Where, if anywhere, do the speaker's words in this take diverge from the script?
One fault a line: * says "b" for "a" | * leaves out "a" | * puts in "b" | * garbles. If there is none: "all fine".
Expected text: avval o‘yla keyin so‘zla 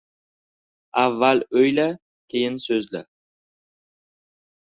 all fine